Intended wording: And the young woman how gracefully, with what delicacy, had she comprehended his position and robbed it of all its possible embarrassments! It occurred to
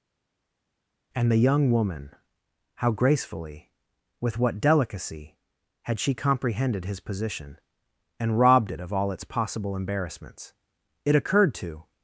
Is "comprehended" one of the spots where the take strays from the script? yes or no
no